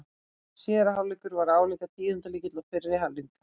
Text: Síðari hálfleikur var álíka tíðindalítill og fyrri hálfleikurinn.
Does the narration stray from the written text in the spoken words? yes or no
no